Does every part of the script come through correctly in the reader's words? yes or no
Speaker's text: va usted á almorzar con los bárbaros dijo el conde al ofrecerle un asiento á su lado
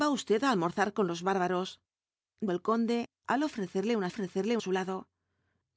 no